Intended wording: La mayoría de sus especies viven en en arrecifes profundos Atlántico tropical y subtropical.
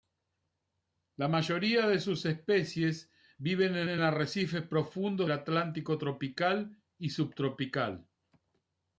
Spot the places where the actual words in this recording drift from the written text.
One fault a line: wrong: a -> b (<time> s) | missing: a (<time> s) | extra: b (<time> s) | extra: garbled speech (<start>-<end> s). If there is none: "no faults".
no faults